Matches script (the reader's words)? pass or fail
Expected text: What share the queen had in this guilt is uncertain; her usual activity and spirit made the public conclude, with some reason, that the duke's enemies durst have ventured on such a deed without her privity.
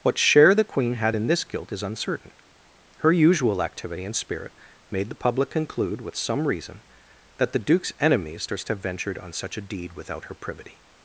pass